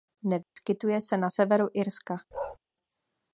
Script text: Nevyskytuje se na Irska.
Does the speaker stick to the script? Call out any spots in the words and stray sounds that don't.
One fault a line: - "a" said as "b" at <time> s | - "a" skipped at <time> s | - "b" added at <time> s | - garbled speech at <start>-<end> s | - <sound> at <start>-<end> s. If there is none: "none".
- dropout at 0.4-0.6 s
- "severu" added at 1.3 s
- bark at 2.3-2.6 s